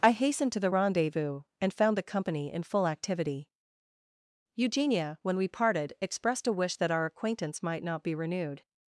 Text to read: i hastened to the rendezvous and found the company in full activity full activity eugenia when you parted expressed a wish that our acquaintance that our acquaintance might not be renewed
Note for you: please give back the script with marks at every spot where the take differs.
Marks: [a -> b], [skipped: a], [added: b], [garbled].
i hastened to the rendezvous and found the company in full activity [skipped: full activity] eugenia when [you -> we] parted expressed a wish that our acquaintance [skipped: that our acquaintance] might not be renewed